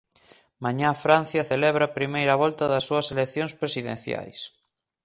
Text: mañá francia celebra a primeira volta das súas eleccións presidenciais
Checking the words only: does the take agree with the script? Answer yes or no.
yes